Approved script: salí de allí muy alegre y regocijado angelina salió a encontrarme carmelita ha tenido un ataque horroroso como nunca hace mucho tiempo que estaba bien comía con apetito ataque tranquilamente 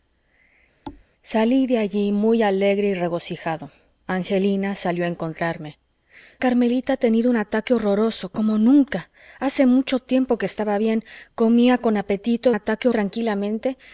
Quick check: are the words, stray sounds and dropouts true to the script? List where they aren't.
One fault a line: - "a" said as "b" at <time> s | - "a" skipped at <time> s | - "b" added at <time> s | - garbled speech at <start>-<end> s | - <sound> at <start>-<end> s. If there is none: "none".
- thud at 0.9-1.1 s